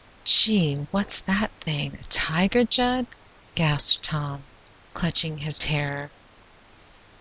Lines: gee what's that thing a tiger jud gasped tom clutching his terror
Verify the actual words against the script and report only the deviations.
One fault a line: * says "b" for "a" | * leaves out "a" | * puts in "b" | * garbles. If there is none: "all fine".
all fine